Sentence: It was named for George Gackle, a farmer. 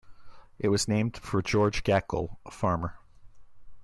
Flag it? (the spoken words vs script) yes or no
no